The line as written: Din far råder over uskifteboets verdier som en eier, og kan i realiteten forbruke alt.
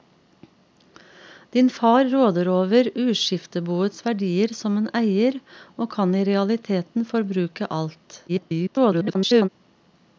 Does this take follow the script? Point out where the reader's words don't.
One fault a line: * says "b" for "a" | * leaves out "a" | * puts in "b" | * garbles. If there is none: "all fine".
* garbles